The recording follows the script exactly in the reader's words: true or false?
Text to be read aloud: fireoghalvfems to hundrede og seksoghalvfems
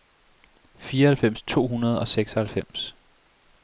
true